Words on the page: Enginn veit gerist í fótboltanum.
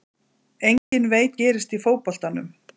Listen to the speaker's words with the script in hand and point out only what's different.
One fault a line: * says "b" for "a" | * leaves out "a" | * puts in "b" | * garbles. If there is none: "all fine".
all fine